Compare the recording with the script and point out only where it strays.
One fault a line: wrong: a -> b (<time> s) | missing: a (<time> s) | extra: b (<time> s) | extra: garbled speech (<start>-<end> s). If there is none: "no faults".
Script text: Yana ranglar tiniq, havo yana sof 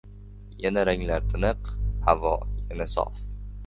no faults